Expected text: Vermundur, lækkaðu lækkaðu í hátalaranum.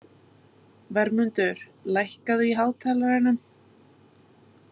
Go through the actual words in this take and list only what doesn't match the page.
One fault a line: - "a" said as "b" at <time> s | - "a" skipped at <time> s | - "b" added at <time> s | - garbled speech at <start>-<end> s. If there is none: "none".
- "lækkaðu" skipped at 2.5 s